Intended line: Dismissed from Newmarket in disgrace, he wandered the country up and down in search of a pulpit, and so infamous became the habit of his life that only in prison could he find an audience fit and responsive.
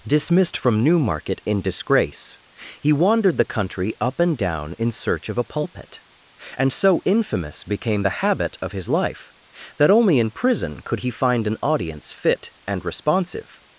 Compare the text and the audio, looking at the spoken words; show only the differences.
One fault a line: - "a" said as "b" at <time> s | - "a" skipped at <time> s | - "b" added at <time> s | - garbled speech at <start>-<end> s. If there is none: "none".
none